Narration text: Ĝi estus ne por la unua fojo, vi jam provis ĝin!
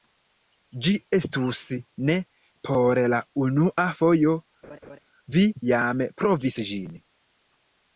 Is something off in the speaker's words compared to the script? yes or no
no